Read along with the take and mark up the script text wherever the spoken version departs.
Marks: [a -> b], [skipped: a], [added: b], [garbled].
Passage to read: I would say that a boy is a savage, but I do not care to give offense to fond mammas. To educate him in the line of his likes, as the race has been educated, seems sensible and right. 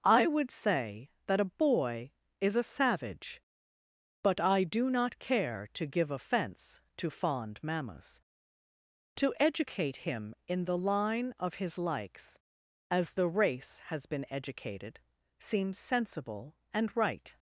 I would say that a boy is a savage, but I do not care to give offense to fond mammas. To educate him in the line of his likes, as the race has been educated, seems sensible and right.